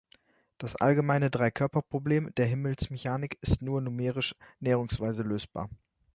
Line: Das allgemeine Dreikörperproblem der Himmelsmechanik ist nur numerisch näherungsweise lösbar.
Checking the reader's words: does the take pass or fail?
pass